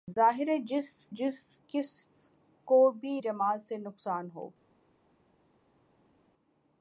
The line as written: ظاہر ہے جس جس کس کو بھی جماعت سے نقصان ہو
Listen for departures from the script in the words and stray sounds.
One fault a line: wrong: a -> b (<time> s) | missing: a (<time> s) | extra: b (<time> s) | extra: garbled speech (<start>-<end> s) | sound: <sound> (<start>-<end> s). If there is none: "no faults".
no faults